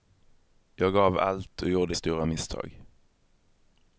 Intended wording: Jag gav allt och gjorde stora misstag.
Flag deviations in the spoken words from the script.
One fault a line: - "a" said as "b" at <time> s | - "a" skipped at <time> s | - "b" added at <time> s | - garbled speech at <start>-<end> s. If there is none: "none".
none